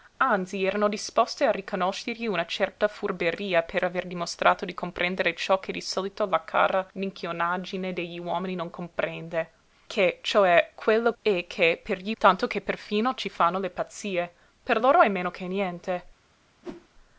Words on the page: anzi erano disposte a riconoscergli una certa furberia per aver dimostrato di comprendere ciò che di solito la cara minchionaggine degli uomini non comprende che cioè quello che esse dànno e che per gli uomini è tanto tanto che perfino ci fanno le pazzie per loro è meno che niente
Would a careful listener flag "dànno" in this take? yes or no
yes